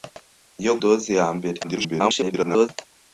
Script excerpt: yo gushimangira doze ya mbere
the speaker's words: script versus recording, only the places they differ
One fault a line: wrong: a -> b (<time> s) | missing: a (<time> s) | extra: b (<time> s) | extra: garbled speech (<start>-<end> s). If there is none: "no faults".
missing: gushimangira (0.7 s)
extra: garbled speech (1.6-2.7 s)